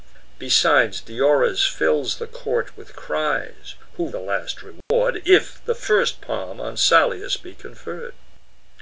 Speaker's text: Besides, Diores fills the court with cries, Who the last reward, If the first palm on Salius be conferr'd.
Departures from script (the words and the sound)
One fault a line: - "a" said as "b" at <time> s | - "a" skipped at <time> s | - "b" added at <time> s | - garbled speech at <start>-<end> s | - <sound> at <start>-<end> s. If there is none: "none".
- dropout at 4.8-4.9 s